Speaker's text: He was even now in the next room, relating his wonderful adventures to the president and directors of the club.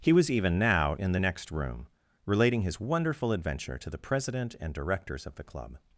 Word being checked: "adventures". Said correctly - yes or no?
no